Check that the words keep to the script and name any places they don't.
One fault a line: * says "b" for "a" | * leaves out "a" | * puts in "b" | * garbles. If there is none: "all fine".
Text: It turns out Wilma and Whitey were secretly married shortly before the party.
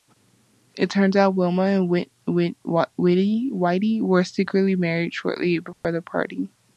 all fine